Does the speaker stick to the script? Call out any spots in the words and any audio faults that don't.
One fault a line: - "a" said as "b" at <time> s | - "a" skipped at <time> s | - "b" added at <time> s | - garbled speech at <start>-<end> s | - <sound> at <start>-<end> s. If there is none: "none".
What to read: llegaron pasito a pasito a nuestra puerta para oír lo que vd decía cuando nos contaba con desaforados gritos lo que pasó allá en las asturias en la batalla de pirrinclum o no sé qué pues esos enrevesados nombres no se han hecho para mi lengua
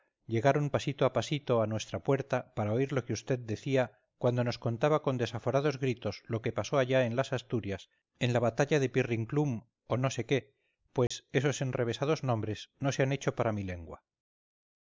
- dropout at 11.1-11.1 s